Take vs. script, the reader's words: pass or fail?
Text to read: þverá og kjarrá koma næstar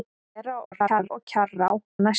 fail